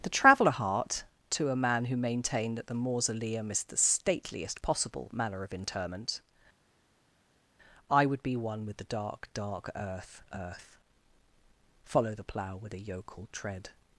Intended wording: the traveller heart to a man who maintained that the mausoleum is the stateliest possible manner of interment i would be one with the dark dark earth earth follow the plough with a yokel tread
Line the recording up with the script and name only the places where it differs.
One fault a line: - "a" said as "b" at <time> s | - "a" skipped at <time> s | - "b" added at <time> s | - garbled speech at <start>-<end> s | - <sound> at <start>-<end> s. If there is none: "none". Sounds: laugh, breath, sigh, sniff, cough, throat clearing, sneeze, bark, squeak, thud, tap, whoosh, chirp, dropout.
none